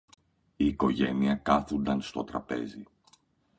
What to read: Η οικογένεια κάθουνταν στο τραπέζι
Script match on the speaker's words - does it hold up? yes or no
yes